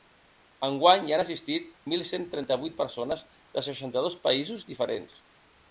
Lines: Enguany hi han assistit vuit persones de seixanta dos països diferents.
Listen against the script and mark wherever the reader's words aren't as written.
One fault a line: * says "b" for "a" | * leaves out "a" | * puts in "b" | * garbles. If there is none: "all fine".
* puts in "mil cent trenta"